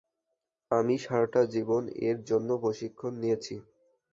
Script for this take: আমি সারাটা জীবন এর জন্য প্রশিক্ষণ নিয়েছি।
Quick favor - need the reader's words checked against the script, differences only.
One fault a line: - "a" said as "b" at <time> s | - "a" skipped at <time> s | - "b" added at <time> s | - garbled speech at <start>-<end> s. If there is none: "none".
none